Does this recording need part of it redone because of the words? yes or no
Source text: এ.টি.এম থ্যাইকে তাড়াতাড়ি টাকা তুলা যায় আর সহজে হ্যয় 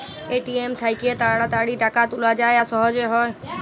no